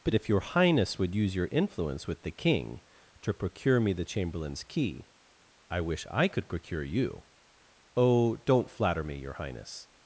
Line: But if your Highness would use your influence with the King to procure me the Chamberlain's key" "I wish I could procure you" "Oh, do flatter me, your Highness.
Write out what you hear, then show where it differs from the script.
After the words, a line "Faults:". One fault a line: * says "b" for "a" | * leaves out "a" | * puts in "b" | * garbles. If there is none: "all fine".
But if your Highness would use your influence with the King to procure me the Chamberlain's key" "I wish I could procure you" "Oh, don't flatter me, your Highness.
Faults:
* says "don't" for "do"